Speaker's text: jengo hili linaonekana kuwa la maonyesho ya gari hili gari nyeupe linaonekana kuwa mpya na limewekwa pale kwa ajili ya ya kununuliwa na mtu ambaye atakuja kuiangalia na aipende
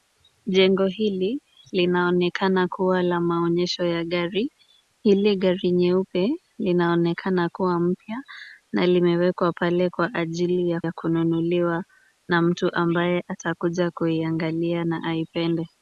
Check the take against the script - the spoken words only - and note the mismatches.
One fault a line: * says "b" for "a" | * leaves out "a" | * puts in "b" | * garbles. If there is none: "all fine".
all fine